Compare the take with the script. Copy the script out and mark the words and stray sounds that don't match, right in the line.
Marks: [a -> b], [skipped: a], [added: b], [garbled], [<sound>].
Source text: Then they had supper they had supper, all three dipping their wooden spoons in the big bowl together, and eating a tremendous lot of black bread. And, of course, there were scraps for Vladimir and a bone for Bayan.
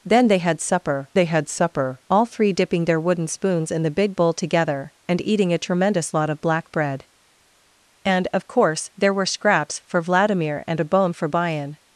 Then they had supper they had supper, all three dipping their wooden spoons in the big bowl together, and eating a tremendous lot of black bread. And, of course, there were scraps for Vladimir and a bone for Bayan.